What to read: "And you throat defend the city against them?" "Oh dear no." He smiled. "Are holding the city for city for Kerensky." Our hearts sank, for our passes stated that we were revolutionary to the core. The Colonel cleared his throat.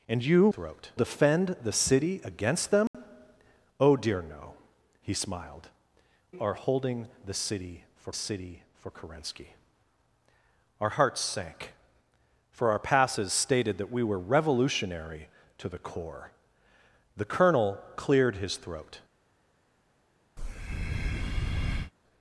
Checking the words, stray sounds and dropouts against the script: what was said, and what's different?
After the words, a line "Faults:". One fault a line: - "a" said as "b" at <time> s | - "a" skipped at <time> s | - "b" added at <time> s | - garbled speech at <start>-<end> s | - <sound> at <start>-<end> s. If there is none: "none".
"And you throat defend the city against them?" "Oh dear no." He smiled. "Are holding the city for city for Kerensky." Our hearts sank, for our passes stated that we were revolutionary to the core. The Colonel cleared his throat.
Faults:
- dropout at 2.9-2.9 s
- breath at 20.4-21.9 s